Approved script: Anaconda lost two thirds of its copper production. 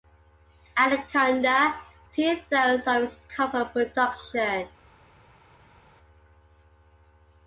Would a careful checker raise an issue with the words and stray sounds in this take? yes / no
yes